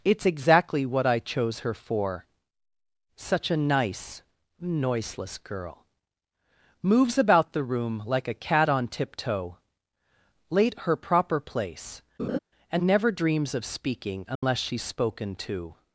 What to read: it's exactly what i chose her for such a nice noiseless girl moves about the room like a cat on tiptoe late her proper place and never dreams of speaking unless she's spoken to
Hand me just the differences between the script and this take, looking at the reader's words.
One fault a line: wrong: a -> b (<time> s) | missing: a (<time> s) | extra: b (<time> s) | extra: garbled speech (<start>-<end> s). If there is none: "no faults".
no faults